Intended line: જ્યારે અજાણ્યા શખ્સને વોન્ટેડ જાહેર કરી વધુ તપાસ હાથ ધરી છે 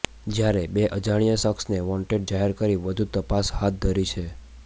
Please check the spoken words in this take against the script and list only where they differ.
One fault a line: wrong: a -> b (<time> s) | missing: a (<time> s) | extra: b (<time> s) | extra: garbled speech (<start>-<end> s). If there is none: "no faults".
extra: બે (0.7 s)